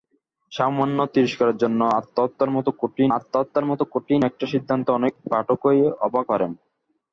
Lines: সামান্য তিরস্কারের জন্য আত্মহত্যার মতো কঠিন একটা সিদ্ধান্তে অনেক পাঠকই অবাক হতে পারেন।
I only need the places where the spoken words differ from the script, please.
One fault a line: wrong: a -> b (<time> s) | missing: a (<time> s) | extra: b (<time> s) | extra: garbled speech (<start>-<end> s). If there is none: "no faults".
extra: আত্মহত্যার মতো কঠিন (3.2 s)
missing: হতে (6.3 s)